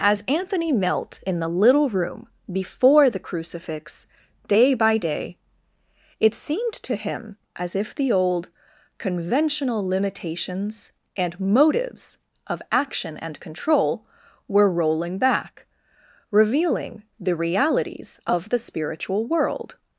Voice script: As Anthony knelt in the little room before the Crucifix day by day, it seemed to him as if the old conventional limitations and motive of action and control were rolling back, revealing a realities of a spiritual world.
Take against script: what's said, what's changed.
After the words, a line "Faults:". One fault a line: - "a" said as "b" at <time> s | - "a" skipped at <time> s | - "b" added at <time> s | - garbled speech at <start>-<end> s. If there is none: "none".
As Anthony knelt in the little room before the Crucifix day by day, it seemed to him as if the old conventional limitations and motives of action and control were rolling back, revealing the realities of the spiritual world.
Faults:
- "motive" said as "motives" at 11.4 s
- "a" said as "the" at 17.2 s
- "a" said as "the" at 18.5 s